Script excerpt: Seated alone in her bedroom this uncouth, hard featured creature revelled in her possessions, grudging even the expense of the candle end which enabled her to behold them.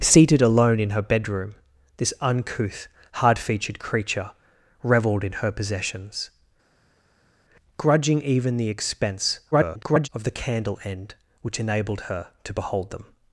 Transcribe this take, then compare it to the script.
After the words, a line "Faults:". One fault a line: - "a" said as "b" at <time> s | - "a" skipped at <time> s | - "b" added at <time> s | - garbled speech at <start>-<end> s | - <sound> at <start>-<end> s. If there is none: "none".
Seated alone in her bedroom this uncouth, hard featured creature revelled in her possessions, grudging even the expense [garbled] of the candle end which enabled her to behold them.
Faults:
- garbled speech at 9.5-10.1 s